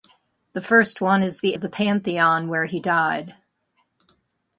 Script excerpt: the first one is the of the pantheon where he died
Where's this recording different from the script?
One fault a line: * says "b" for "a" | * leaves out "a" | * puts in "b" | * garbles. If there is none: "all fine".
all fine